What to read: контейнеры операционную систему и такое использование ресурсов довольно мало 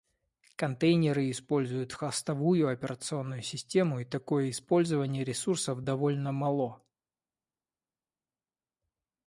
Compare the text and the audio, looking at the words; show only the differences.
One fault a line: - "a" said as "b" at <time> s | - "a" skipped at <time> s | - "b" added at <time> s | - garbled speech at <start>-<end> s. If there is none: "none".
- "используют хостовую" added at 1.3 s